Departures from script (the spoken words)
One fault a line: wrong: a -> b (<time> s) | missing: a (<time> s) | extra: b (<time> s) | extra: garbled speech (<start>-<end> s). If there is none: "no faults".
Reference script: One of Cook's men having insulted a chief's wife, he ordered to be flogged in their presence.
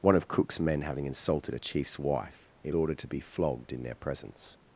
no faults